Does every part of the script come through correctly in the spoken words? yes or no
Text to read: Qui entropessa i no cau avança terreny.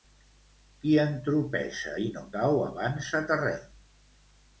yes